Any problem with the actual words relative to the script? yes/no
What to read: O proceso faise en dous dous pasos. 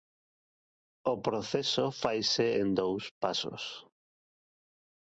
yes